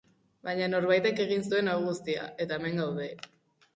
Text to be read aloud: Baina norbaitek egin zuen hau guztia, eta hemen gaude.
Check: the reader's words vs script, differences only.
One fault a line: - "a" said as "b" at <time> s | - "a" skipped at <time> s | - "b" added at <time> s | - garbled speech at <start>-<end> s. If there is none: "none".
none